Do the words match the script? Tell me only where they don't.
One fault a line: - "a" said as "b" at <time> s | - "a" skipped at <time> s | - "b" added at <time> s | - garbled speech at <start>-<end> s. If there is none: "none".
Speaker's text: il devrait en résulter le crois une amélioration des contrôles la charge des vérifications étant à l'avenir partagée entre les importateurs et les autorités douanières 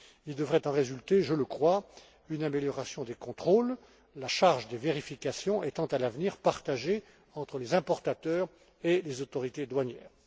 - "je" added at 1.2 s